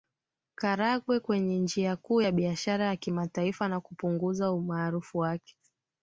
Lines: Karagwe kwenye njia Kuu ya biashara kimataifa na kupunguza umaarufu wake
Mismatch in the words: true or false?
true